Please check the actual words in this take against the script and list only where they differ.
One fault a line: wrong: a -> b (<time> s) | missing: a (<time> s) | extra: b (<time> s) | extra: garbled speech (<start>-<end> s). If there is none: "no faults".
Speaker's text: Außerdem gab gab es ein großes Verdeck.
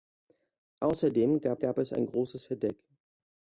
no faults